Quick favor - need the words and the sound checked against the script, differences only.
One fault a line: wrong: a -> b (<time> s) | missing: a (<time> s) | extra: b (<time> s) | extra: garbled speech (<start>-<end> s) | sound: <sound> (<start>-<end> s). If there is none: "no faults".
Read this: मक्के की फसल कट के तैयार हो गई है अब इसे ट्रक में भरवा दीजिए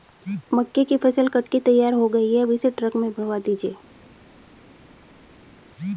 no faults